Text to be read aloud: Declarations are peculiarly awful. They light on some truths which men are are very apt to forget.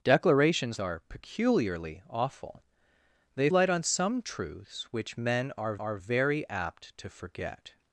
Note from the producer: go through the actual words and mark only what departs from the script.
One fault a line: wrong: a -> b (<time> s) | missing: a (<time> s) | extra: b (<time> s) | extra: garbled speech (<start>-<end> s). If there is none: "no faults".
no faults